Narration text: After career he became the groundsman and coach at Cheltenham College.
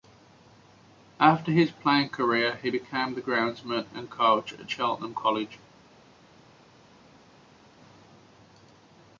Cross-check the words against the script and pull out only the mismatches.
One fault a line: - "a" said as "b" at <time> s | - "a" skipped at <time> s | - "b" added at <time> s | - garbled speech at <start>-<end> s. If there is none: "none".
- "his playing" added at 1.5 s